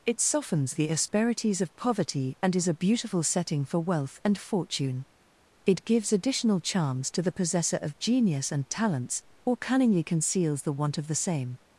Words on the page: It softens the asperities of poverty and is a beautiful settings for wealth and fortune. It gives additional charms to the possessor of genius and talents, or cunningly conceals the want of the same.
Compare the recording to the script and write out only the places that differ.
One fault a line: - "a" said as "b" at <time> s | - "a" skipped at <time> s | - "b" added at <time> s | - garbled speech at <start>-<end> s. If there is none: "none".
- "settings" said as "setting" at 3.2 s